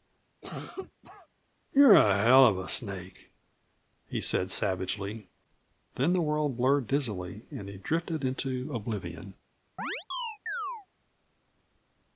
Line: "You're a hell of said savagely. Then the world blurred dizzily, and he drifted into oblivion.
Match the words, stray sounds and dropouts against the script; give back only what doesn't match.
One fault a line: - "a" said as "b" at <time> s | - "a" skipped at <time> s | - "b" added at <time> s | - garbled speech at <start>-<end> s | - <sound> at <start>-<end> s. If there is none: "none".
- cough at 0.4-1.3 s
- "a snake he" added at 2.6 s
- chirp at 9.8-10.9 s